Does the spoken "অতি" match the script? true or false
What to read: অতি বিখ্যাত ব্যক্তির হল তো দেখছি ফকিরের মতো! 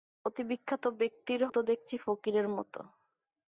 true